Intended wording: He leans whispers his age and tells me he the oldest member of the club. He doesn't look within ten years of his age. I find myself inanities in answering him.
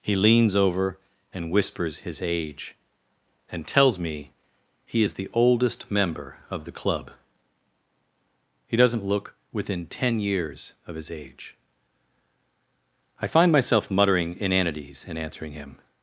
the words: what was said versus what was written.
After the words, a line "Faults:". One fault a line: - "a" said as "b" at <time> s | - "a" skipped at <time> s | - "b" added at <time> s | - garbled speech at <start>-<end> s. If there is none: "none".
He leans over and whispers his age and tells me he is the oldest member of the club. He doesn't look within ten years of his age. I find myself muttering inanities in answering him.
Faults:
- "over and" added at 0.6 s
- "is" added at 5.0 s
- "muttering" added at 13.9 s